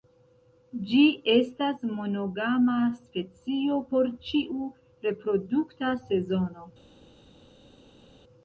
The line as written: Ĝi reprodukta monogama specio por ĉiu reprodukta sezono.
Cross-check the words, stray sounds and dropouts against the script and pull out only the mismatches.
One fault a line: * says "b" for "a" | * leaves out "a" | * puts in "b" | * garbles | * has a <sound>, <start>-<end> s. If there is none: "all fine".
* says "estas" for "reprodukta"